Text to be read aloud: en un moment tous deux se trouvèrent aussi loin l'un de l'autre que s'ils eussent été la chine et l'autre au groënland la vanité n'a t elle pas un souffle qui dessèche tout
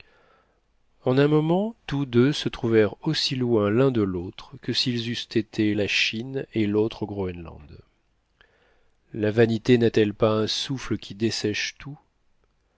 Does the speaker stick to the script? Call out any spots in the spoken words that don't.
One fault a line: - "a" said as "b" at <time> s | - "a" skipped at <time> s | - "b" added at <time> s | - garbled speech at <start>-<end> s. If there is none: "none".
none